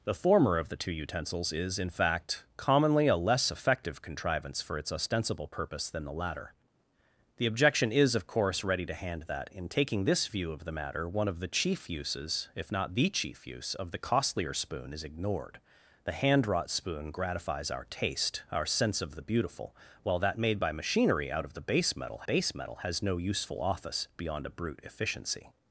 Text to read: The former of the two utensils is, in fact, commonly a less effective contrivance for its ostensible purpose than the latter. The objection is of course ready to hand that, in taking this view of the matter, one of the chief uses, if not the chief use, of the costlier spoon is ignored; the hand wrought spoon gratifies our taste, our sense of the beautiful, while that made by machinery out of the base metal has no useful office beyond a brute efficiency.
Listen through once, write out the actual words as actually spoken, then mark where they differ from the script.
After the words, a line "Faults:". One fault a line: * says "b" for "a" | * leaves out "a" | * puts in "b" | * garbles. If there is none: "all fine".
The former of the two utensils is, in fact, commonly a less effective contrivance for its ostensible purpose than the latter. The objection is of course ready to hand that, in taking this view of the matter, one of the chief uses, if not the chief use, of the costlier spoon is ignored; the hand wrought spoon gratifies our taste, our sense of the beautiful, while that made by machinery out of the base metal base metal has no useful office beyond a brute efficiency.
Faults:
* puts in "base metal"